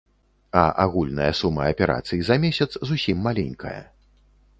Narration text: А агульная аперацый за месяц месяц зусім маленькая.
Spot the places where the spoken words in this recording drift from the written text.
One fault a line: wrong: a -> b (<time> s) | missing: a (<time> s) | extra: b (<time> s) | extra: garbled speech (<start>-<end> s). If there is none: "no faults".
extra: сума (1.4 s)
missing: месяц (2.7 s)